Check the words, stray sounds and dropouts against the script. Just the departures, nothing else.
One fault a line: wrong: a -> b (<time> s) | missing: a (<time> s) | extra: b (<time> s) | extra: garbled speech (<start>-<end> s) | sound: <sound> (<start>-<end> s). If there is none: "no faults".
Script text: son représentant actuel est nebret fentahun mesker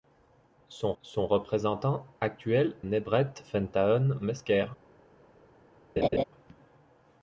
extra: son (1.0 s)
missing: est (2.7 s)
sound: laugh (6.0-6.2 s)